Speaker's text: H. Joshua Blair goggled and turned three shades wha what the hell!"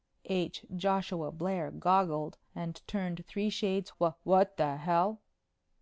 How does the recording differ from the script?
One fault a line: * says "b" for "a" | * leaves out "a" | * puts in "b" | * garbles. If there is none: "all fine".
all fine